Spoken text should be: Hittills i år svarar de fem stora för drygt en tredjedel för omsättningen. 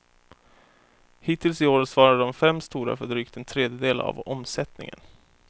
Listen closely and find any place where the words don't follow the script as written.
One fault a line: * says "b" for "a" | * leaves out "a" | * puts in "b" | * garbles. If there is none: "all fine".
* says "av" for "för"